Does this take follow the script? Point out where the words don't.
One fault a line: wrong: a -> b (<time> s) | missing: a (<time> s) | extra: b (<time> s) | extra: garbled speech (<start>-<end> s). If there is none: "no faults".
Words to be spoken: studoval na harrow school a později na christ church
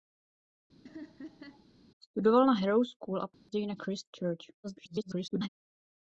extra: garbled speech (4.6-5.5 s)